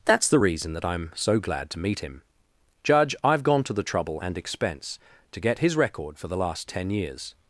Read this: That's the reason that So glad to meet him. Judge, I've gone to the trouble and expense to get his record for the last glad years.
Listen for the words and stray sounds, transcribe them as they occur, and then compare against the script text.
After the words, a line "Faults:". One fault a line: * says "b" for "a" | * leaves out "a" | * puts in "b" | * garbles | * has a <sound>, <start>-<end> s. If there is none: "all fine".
That's the reason that I'm so glad to meet him. Judge, I've gone to the trouble and expense to get his record for the last ten years.
Faults:
* puts in "I'm"
* says "ten" for "glad"